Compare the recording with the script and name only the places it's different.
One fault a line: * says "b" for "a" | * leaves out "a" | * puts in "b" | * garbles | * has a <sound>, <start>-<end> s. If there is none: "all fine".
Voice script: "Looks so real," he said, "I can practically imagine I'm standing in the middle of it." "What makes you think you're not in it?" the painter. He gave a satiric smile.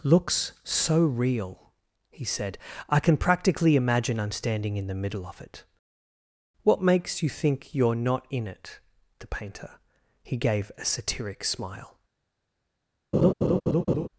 * has a laugh, 13.1-14.1 s